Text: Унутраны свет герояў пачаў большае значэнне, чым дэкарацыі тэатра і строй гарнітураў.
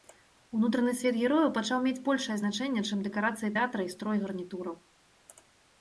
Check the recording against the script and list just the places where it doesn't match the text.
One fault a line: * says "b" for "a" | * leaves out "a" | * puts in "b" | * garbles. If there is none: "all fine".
* puts in "мець"